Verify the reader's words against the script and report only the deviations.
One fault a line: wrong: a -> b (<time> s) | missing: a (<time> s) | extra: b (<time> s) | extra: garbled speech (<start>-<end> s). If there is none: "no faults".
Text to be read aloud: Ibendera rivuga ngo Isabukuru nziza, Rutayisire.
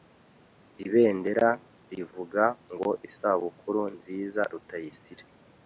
no faults